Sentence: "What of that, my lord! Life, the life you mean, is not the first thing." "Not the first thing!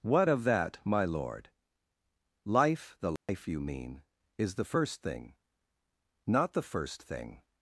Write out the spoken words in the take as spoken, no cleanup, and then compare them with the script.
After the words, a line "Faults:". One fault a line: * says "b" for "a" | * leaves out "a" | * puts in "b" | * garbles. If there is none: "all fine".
"What of that, my lord! Life, the life you mean, is the first thing." "Not the first thing!
Faults:
* leaves out "not"